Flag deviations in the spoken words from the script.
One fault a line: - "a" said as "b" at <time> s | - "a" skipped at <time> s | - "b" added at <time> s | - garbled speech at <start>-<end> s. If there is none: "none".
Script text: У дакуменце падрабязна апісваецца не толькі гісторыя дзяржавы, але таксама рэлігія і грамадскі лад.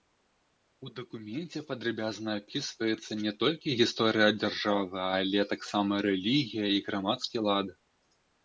none